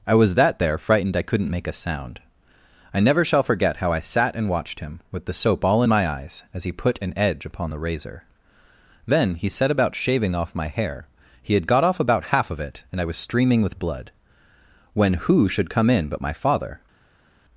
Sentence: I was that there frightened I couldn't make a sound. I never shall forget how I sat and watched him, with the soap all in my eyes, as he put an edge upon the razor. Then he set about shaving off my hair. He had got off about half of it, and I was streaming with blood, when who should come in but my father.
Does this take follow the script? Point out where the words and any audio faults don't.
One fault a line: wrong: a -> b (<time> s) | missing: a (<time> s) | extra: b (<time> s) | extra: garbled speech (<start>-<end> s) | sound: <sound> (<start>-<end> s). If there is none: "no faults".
no faults